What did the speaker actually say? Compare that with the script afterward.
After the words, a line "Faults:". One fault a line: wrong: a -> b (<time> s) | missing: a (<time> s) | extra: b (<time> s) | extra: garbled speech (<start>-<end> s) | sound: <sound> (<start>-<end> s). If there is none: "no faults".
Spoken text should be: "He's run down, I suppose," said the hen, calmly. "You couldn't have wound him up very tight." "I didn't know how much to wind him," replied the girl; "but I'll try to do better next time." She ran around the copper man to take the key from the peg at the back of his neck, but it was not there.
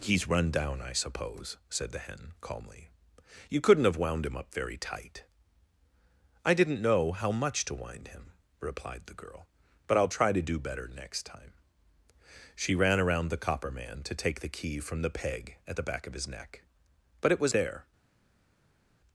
"He's run down, I suppose," said the hen, calmly. "You couldn't have wound him up very tight." "I didn't know how much to wind him," replied the girl; "but I'll try to do better next time." She ran around the copper man to take the key from the peg at the back of his neck, but it was there.
Faults:
missing: not (17.5 s)